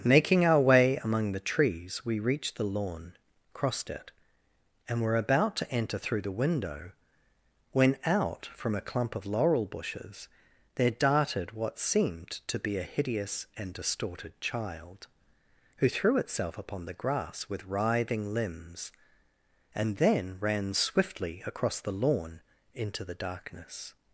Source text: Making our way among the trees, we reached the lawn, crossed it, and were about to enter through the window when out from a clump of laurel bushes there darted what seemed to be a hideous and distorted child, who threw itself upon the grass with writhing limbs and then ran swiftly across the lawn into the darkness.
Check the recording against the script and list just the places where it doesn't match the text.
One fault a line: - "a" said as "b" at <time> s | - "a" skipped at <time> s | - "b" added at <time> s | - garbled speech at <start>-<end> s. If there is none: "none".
none